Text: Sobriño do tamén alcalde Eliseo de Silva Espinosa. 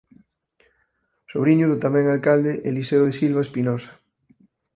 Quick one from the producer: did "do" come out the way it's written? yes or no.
yes